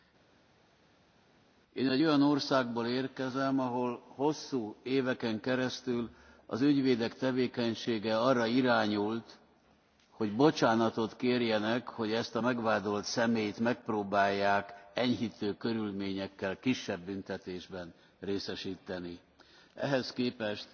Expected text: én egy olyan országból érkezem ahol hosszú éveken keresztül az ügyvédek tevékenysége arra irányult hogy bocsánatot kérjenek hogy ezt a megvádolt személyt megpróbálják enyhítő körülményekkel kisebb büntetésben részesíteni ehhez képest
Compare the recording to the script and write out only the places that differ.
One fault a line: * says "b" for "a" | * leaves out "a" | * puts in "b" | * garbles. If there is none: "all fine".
all fine